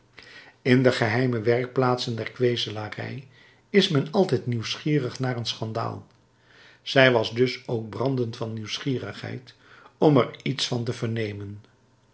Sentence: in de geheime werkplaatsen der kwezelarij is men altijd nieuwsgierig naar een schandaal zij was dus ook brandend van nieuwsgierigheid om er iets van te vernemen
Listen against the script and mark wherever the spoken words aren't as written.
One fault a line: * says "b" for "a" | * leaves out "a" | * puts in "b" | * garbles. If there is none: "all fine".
all fine